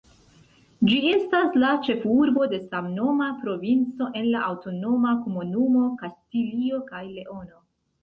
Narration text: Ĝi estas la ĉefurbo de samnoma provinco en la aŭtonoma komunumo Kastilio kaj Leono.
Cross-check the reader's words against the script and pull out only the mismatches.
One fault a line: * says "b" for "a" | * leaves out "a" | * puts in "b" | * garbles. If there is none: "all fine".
all fine